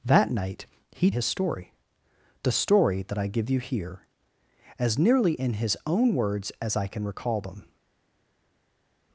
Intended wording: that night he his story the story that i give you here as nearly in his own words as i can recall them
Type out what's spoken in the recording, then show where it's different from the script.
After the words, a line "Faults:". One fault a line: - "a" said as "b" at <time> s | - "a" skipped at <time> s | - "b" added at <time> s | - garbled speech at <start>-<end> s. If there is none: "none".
that night he his story the story that i give you here as nearly in his own words as i can recall them
Faults:
none